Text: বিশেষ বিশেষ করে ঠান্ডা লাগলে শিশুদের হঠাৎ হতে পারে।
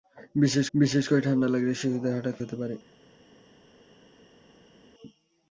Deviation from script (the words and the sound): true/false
false